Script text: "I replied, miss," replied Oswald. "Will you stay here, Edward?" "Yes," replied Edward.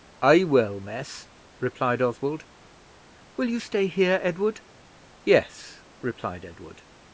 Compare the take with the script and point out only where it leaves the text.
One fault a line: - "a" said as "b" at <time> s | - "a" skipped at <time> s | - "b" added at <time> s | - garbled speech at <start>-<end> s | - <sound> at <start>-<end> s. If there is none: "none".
- "replied" said as "will" at 0.5 s